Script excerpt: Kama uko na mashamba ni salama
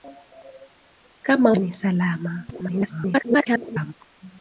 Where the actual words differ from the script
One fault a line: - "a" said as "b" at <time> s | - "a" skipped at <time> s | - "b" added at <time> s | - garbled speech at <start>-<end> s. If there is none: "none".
- "uko na mashamba" skipped at 1.5 s
- garbled speech at 2.5-3.9 s